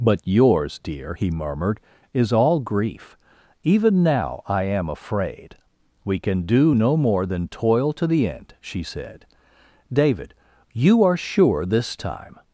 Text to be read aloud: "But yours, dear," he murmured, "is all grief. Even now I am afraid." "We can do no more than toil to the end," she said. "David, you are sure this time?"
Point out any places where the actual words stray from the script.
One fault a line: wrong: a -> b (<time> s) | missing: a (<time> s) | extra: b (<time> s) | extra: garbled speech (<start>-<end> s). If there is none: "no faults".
no faults